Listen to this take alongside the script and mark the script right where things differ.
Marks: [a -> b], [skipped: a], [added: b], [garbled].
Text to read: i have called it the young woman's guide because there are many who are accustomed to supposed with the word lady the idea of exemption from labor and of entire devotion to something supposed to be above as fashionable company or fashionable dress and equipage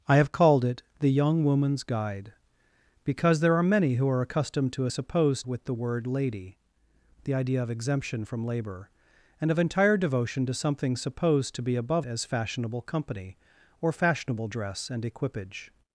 i have called it the young woman's guide because there are many who are accustomed to supposed with the word lady the idea of exemption from labor and of entire devotion to something supposed to be above as fashionable company or fashionable dress and equipage